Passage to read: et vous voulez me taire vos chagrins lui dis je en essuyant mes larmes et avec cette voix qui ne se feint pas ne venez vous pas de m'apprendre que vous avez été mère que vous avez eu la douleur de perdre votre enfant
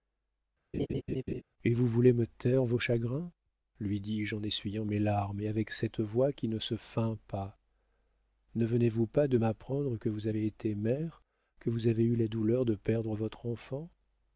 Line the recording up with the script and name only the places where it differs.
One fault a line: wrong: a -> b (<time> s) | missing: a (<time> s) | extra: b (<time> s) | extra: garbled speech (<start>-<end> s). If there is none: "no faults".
no faults